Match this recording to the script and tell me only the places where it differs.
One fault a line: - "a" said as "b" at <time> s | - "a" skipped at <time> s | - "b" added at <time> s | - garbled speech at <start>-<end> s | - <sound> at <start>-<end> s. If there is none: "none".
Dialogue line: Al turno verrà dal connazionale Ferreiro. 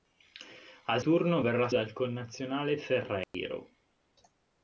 - dropout at 3.2-3.3 s